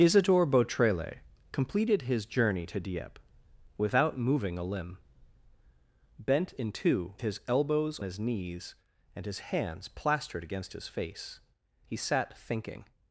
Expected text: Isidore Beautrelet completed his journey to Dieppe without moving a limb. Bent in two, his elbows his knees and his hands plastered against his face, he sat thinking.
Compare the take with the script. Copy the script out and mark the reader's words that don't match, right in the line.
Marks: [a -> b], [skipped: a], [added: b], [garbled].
Isidore Beautrelet completed his journey to Dieppe without moving a limb. Bent in two, his elbows his knees and his hands plastered against his face, he sat thinking.